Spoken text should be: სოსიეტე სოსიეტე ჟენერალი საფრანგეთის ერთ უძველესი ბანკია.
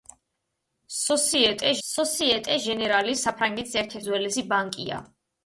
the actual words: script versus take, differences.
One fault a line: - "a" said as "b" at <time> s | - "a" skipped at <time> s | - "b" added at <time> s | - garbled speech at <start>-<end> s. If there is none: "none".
none